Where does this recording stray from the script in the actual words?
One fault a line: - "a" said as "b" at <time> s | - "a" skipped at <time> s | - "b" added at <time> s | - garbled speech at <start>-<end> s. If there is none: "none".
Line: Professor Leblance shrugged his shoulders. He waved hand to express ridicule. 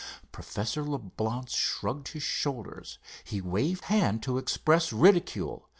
none